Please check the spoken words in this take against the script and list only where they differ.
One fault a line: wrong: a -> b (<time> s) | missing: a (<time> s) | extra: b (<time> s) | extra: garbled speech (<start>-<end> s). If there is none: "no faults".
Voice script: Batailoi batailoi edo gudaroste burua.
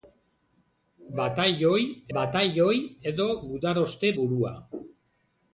no faults